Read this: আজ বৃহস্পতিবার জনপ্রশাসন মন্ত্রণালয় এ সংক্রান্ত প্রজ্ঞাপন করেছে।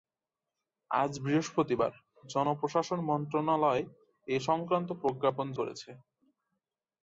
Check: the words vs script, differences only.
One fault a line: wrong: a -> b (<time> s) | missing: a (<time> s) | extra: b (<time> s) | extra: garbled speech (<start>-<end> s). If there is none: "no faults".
no faults